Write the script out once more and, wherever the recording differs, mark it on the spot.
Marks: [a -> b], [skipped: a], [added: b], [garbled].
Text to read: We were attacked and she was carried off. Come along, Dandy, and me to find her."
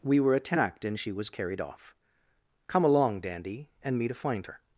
We were attacked and she was carried off. Come along, Dandy, and me to find her."